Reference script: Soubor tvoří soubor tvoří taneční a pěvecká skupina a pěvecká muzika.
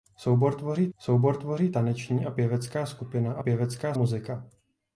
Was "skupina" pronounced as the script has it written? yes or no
yes